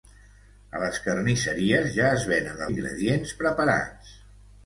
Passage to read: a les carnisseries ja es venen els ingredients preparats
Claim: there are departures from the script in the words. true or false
true